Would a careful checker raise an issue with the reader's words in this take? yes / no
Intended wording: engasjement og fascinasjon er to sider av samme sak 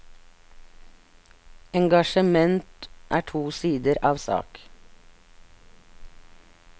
yes